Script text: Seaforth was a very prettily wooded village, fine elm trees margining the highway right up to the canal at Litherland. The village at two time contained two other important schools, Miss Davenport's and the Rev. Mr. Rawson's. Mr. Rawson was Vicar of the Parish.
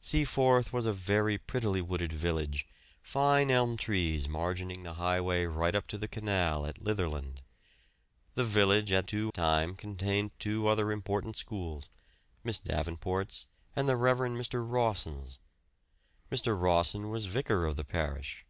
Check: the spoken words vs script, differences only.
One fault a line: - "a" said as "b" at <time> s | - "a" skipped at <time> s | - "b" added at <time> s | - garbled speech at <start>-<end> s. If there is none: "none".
none